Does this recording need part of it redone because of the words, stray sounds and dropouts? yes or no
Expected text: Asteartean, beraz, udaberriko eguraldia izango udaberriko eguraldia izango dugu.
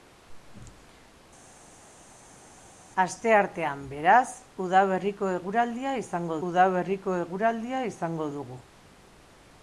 no